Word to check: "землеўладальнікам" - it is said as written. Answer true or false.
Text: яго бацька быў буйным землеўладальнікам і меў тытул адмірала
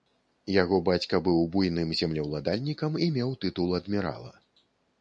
true